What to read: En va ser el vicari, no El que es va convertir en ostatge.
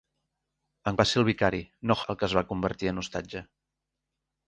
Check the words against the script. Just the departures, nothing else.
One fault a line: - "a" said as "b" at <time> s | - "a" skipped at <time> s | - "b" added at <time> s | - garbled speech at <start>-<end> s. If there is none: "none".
none